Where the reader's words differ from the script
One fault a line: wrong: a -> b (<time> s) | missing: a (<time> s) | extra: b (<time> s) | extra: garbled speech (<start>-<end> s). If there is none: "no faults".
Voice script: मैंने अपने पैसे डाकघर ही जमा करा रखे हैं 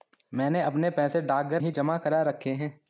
no faults